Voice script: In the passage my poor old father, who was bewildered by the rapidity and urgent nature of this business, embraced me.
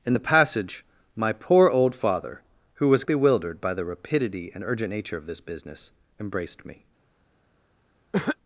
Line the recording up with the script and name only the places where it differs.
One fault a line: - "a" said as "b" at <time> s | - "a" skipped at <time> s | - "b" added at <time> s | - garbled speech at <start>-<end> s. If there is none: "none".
none